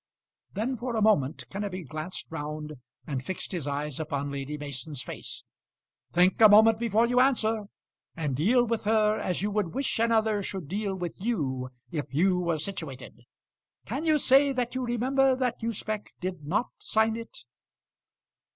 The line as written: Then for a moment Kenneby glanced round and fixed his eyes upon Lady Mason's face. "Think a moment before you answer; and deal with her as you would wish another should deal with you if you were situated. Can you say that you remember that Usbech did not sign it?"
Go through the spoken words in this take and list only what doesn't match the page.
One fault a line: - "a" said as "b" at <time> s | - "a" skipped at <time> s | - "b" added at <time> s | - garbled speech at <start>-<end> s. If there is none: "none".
none